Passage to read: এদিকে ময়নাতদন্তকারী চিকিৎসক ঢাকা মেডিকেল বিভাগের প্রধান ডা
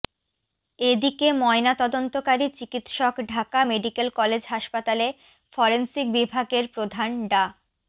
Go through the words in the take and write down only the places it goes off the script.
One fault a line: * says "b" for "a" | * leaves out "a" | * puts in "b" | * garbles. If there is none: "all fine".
* puts in "কলেজ হাসপাতালে ফরেনসিক"